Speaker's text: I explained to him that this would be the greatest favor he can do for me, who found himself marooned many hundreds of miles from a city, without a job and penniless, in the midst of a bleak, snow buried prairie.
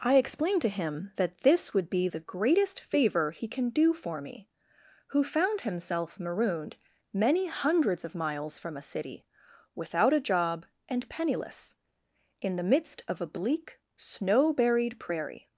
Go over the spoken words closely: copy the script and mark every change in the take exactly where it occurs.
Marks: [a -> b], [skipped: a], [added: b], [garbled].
I explained to him that this would be the greatest favor he can do for me, who found himself marooned many hundreds of miles from a city, without a job and penniless, in the midst of a bleak, snow buried prairie.